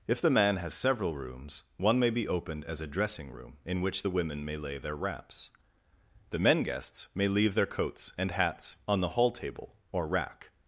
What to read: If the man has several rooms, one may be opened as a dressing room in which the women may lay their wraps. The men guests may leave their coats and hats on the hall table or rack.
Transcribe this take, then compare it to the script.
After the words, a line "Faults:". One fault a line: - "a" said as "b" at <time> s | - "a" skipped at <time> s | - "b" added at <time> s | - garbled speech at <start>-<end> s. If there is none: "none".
If the man has several rooms, one may be opened as a dressing room in which the women may lay their wraps. The men guests may leave their coats and hats on the hall table or rack.
Faults:
none